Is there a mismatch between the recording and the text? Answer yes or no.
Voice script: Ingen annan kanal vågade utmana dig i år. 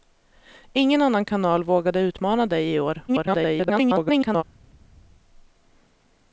yes